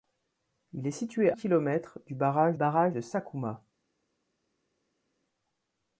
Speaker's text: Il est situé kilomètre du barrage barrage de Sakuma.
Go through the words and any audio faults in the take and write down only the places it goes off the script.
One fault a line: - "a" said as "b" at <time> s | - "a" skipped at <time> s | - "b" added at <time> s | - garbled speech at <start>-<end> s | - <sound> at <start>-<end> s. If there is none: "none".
none